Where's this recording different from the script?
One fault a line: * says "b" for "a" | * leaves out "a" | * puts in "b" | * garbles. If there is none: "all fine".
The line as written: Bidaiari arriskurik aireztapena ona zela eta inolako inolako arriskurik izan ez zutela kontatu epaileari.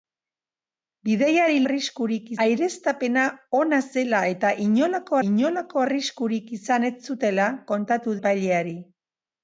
all fine